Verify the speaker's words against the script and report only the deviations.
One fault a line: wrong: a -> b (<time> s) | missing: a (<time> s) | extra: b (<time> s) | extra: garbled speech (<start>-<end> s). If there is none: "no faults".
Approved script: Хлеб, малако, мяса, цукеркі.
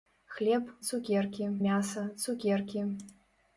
wrong: малако -> цукеркі (0.9 s)